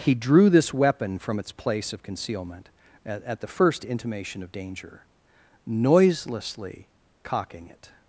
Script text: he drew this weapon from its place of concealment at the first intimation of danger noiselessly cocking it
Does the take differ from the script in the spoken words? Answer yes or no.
yes